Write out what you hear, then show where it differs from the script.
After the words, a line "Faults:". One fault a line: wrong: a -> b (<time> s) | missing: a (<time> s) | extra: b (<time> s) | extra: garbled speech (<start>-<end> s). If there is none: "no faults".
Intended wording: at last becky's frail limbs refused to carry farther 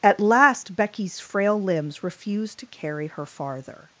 at last becky's frail limbs refused to carry her farther
Faults:
extra: her (3.0 s)